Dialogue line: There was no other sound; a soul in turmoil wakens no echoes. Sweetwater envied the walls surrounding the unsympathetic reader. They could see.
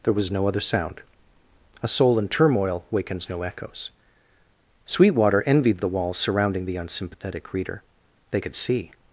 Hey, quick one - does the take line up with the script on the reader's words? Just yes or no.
yes